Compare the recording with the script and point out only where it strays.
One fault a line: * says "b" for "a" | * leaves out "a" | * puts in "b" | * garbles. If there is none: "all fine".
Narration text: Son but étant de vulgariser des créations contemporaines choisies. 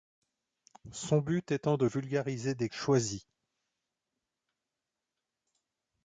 * leaves out "créations contemporaines"